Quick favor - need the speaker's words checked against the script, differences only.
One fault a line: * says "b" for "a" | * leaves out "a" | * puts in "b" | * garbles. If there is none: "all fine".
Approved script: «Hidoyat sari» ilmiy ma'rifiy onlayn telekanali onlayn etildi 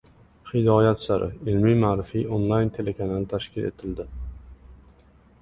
* says "tashkil" for "onlayn"